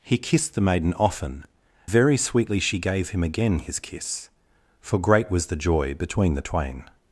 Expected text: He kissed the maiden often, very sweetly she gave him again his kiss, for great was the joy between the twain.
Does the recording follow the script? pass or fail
pass